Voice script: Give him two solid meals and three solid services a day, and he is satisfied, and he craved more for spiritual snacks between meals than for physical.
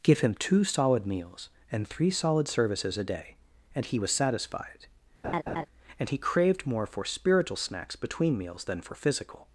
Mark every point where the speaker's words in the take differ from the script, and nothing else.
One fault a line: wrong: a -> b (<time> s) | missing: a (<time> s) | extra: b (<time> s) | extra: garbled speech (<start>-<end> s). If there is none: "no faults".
wrong: is -> was (4.0 s)